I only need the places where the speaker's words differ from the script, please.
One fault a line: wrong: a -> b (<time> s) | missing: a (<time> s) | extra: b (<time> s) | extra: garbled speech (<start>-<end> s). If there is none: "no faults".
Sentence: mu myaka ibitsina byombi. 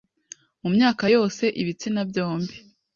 extra: yose (1.1 s)